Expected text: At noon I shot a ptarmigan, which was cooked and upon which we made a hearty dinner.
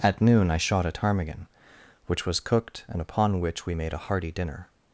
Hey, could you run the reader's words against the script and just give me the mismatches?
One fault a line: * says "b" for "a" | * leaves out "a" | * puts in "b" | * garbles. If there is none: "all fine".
all fine